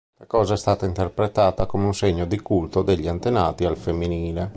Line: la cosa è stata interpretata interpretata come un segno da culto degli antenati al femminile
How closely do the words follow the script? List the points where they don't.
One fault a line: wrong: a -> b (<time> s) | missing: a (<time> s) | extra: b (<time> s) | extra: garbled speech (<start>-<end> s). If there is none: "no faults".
missing: interpretata (1.7 s)
wrong: da -> di (2.2 s)